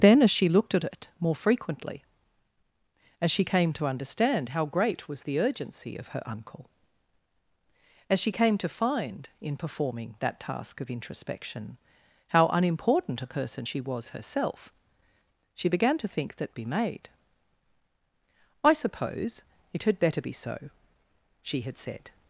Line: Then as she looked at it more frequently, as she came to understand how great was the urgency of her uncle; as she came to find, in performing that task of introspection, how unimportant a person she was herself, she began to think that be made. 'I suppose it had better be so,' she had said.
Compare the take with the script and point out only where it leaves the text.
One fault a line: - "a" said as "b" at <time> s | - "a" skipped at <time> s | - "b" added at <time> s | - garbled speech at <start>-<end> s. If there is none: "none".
none